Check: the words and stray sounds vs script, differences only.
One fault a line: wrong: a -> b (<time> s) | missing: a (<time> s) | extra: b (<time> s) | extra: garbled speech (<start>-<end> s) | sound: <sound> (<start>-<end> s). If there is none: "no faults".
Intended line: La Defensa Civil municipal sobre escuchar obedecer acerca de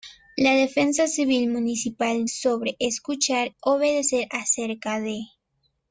no faults